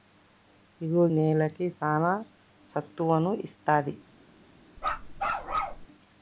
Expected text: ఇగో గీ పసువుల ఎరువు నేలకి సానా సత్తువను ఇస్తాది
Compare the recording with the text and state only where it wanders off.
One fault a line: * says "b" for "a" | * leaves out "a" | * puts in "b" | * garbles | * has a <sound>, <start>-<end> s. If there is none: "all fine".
* leaves out "గీ పసువుల ఎరువు"
* has a bark, 4.8-5.9 s